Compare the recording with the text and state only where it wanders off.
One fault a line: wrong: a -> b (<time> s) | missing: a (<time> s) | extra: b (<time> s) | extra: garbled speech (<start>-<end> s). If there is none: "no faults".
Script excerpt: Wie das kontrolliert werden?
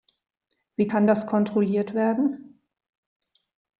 extra: kann (0.8 s)